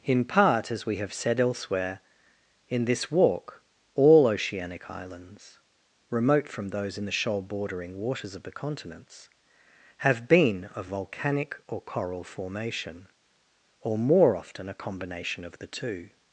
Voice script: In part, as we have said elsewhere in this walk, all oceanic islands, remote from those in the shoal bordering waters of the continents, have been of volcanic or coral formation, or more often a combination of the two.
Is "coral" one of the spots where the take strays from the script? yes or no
no